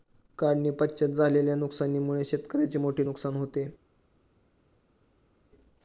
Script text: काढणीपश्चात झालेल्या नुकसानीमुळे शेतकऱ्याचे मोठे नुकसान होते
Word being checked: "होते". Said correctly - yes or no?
yes